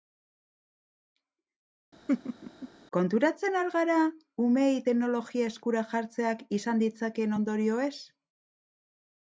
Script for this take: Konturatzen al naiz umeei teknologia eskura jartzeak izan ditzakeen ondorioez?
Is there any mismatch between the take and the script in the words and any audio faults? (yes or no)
yes